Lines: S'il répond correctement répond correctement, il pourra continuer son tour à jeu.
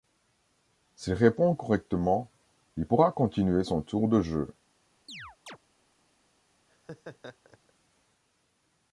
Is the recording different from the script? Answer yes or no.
yes